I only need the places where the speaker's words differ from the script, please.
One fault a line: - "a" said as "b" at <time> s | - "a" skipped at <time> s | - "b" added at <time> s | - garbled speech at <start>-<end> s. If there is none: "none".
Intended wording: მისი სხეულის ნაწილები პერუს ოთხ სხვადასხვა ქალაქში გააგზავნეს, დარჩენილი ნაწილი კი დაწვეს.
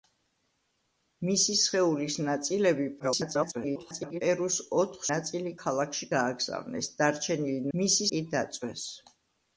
- garbled speech at 3.0-4.2 s
- "სხვადასხვა" said as "ნაწილი" at 5.1 s
- "ნაწილი" said as "მისი" at 7.8 s